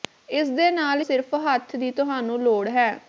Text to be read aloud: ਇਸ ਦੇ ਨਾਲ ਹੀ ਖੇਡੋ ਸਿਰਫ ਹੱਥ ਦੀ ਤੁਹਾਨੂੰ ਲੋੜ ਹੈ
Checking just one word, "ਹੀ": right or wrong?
wrong